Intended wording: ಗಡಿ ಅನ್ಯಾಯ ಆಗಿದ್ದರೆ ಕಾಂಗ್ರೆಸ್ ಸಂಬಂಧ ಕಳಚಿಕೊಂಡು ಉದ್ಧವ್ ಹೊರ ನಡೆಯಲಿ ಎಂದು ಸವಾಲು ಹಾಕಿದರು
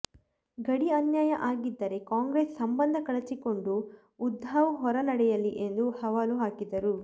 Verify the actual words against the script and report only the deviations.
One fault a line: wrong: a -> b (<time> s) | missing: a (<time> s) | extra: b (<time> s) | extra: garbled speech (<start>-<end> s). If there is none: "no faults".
no faults